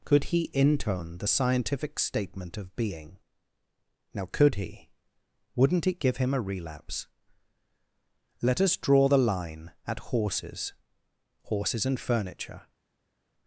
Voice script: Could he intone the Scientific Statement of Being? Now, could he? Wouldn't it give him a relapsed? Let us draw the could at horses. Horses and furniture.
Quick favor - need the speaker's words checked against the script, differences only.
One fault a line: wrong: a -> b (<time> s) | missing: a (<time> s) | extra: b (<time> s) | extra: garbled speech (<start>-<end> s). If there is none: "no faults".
wrong: relapsed -> relapse (6.4 s)
wrong: could -> line (9.2 s)